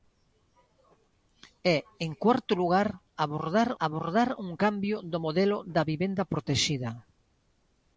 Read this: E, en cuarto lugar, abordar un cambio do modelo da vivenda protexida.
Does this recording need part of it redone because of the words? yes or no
yes